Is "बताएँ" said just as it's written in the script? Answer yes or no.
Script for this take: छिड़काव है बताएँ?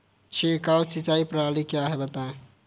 yes